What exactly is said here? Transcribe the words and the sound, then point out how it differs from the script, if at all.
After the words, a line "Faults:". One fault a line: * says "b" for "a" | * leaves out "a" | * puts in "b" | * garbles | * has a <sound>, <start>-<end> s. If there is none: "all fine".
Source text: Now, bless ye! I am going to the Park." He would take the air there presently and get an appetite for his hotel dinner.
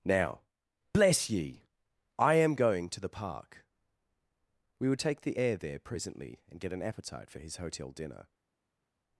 Now, bless ye! I am going to the Park." We would take the air there presently and get an appetite for his hotel dinner.
Faults:
* says "We" for "He"